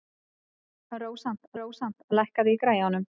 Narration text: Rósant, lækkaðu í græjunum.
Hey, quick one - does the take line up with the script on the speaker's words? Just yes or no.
no